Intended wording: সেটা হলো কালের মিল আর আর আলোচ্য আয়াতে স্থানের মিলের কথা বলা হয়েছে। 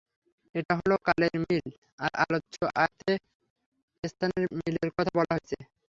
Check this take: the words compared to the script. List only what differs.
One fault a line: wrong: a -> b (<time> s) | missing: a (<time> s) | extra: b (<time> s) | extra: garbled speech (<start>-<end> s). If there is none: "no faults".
wrong: সেটা -> এটা (0.6 s)
missing: আর (2.1 s)